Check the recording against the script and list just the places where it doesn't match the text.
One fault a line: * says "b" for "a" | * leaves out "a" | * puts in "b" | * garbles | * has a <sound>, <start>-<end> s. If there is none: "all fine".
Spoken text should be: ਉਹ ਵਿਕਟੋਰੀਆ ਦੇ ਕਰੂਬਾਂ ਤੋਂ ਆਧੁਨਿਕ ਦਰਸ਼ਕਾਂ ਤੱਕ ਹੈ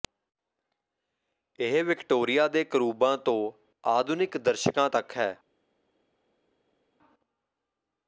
* says "ਇਹ" for "ਉਹ"